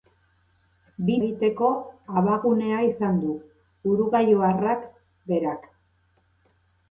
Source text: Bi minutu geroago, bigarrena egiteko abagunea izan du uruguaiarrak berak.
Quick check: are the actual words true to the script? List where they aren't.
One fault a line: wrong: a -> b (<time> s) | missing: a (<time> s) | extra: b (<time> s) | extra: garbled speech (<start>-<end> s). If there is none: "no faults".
missing: minutu geroago bigarrena (1.2 s)